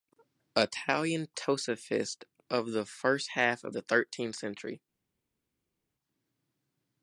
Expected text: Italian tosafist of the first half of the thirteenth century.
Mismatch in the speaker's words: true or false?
false